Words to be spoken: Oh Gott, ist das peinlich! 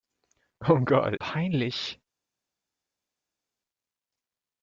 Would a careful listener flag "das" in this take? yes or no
yes